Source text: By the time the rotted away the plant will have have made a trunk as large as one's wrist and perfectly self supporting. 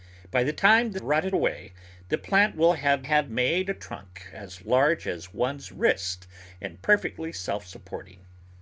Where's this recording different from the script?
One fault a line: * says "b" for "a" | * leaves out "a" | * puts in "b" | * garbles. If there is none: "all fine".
all fine